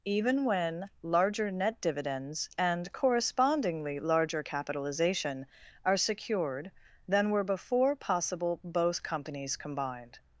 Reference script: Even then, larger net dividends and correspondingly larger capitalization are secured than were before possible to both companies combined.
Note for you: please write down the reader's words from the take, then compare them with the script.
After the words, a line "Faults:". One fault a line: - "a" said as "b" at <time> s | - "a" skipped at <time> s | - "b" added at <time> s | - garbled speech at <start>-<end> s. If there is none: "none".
Even when, larger net dividends and correspondingly larger capitalization are secured than were before possible both companies combined.
Faults:
- "then" said as "when" at 0.5 s
- "to" skipped at 8.6 s